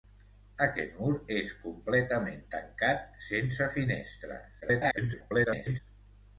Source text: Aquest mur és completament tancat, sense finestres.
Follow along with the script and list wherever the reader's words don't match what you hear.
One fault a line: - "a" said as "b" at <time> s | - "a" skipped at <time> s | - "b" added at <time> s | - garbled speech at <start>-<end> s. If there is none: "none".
- garbled speech at 4.6-5.8 s